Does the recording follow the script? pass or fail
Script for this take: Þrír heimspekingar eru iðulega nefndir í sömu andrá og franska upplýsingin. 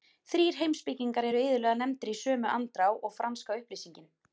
pass